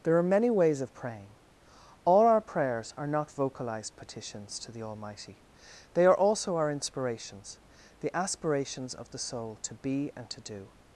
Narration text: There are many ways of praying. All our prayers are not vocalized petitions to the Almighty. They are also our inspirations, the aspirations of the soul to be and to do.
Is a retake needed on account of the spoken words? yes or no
no